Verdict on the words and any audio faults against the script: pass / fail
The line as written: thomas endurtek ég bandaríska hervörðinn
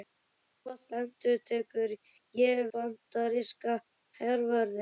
pass